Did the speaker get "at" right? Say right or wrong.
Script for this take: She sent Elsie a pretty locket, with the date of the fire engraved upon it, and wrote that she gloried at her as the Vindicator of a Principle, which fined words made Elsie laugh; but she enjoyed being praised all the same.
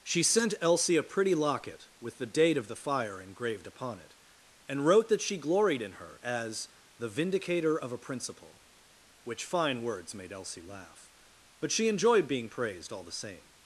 wrong